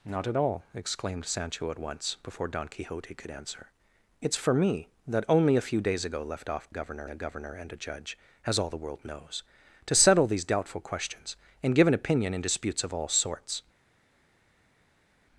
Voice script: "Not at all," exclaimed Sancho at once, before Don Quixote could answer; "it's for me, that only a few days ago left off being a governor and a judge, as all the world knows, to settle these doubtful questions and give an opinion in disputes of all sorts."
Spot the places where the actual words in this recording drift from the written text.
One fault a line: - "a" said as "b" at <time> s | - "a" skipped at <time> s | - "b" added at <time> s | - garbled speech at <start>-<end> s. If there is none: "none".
- "being" said as "governor" at 6.7 s